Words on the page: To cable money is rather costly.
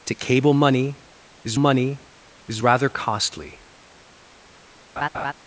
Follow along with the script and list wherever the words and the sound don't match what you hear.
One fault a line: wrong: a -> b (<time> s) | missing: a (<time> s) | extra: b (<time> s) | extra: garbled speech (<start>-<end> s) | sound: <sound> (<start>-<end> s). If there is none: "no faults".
extra: money is (1.6 s)
sound: laugh (5.0-5.3 s)